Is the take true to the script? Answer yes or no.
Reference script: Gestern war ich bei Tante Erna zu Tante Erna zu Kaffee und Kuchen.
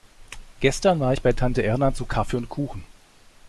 no